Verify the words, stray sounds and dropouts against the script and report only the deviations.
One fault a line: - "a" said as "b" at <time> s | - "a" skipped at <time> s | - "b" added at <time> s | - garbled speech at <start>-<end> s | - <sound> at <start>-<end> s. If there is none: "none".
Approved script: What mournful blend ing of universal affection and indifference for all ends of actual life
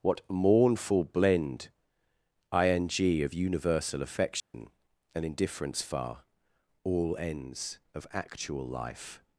- dropout at 4.4-4.5 s
- "for" said as "far" at 5.8 s